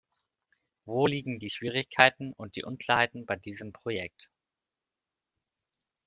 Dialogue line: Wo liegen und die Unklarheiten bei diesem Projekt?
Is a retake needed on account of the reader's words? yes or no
yes